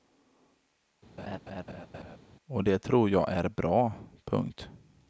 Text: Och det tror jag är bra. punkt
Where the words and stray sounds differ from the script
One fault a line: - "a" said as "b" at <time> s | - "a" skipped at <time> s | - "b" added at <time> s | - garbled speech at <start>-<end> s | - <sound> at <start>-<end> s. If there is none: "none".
- laugh at 1.2-2.2 s